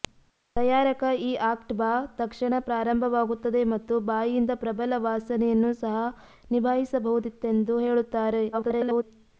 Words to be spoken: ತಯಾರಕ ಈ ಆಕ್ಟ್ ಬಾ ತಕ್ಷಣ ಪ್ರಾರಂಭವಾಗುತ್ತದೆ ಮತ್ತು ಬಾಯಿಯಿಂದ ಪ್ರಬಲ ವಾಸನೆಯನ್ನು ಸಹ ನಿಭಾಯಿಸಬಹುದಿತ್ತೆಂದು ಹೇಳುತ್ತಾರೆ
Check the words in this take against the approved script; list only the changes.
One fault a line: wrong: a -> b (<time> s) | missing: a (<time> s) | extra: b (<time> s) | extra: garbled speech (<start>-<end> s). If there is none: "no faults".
extra: garbled speech (8.5-9.0 s)